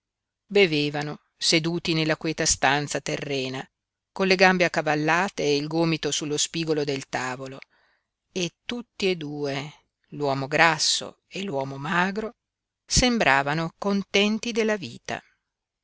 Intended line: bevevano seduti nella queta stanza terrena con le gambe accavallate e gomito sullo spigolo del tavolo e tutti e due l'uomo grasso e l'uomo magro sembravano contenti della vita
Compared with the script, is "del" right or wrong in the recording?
right